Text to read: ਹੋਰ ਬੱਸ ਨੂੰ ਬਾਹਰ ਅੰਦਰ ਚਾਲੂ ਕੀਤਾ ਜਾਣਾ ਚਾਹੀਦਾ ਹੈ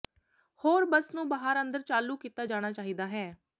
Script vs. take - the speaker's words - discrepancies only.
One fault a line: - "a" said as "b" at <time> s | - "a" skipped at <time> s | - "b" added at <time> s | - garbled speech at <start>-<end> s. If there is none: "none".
none